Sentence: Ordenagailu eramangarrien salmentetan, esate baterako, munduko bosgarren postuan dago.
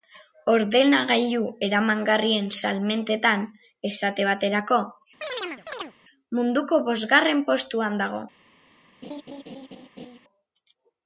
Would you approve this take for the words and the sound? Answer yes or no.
no